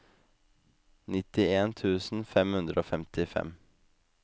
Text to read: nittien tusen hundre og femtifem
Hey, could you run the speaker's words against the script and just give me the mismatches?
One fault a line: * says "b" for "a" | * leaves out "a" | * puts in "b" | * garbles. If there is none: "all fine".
* puts in "fem"